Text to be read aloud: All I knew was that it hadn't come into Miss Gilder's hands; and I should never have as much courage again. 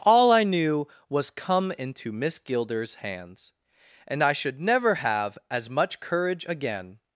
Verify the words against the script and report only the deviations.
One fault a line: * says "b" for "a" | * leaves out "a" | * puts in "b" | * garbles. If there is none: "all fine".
* leaves out "that it hadn't"